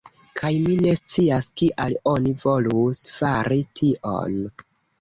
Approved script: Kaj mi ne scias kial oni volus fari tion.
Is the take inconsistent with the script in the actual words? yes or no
no